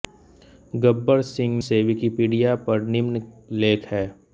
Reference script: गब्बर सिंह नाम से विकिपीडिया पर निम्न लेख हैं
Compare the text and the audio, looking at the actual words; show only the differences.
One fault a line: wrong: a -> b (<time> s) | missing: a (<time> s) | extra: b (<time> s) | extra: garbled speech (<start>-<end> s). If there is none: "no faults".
missing: नाम (1.6 s)